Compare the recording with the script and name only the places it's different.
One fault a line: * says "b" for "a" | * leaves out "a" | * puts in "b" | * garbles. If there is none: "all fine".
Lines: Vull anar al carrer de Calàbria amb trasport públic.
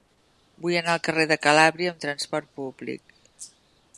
all fine